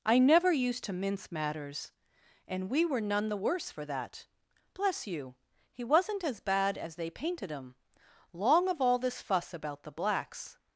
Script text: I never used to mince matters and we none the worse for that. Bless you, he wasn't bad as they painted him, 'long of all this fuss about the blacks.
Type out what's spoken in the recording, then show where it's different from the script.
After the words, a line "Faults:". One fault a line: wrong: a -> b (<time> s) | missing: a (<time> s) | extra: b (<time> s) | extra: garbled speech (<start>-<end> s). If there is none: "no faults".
I never used to mince matters and we were none the worse for that. Bless you, he wasn't as bad as they painted him, 'long of all this fuss about the blacks.
Faults:
extra: were (2.8 s)
extra: as (6.2 s)